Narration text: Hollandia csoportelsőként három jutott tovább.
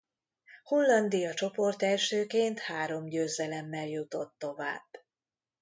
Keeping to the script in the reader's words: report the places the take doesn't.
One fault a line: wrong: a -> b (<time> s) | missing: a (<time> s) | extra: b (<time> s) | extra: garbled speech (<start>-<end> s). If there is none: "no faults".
extra: győzelemmel (3.1 s)